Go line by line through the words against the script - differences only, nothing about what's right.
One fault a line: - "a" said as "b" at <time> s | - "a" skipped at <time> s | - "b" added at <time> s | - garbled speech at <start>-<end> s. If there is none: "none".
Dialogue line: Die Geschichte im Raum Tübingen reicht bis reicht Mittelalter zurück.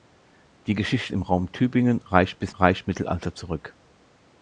none